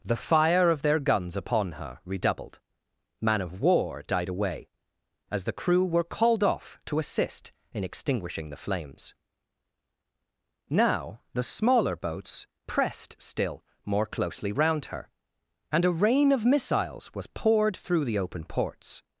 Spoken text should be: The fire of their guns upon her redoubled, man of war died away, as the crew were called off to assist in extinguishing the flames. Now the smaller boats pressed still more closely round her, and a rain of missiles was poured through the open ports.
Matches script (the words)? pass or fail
pass